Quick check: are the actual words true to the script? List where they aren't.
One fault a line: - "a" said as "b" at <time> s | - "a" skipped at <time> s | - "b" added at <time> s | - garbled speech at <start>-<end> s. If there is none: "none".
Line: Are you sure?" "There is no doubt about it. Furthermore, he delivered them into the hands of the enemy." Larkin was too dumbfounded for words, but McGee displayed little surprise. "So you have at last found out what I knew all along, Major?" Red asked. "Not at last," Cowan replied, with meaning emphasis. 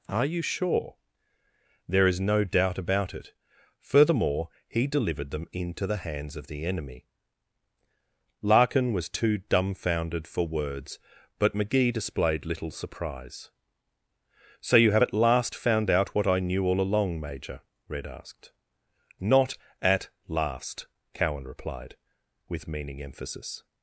none